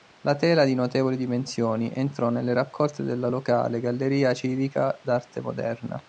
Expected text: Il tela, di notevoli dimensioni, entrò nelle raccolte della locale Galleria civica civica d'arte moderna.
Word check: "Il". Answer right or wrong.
wrong